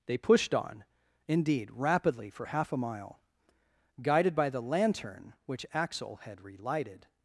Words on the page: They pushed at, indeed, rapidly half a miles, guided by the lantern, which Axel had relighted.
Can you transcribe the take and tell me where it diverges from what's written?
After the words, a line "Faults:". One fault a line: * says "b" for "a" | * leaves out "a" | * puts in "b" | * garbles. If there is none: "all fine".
They pushed on, indeed, rapidly for half a mile, guided by the lantern, which Axel had relighted.
Faults:
* says "on" for "at"
* puts in "for"
* says "mile" for "miles"